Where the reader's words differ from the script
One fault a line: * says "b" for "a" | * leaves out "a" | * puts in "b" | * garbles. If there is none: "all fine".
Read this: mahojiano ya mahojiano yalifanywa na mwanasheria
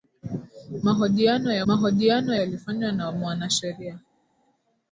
all fine